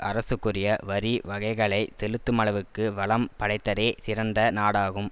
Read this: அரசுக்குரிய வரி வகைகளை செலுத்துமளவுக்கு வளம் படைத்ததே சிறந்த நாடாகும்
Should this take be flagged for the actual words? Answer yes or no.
no